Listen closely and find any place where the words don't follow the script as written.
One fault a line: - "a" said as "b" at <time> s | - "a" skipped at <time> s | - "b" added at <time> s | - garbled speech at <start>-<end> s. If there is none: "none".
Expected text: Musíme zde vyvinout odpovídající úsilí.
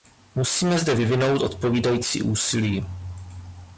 none